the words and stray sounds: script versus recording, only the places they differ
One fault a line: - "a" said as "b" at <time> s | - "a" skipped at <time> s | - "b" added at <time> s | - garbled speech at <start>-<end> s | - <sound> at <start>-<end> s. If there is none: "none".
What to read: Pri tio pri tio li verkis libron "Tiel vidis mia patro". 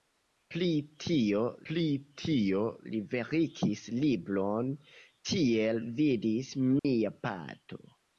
- dropout at 6.8-6.8 s